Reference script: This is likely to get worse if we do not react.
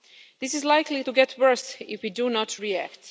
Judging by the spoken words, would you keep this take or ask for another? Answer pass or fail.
pass